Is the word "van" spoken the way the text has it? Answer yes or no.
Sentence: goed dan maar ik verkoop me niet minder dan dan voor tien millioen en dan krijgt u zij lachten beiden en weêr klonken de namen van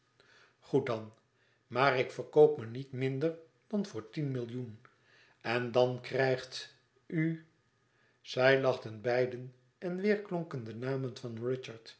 yes